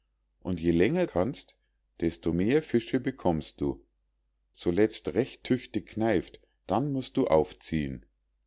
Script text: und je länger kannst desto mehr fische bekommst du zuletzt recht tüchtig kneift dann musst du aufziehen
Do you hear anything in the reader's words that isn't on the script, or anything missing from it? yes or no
no